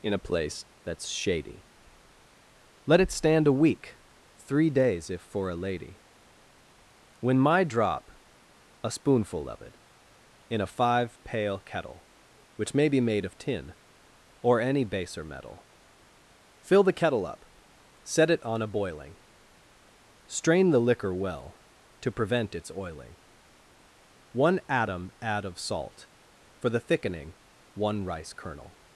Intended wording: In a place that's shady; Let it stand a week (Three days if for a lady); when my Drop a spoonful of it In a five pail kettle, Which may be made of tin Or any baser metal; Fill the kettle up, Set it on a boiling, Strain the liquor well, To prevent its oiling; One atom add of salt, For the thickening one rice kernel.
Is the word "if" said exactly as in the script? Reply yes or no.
yes